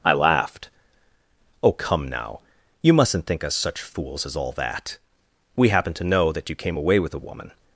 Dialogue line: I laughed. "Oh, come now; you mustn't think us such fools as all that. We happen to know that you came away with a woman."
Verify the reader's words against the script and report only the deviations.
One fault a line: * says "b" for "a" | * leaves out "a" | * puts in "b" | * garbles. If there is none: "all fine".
all fine